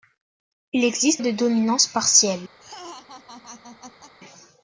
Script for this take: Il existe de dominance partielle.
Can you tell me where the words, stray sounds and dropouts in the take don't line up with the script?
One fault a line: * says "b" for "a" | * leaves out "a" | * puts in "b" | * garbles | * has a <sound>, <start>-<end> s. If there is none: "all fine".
* has a laugh, 2.6-4.1 s